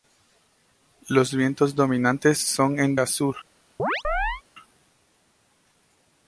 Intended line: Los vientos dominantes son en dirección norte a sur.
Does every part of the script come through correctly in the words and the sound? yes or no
no